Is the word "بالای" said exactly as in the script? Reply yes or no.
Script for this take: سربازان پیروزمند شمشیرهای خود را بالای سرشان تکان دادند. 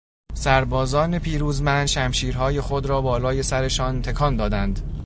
yes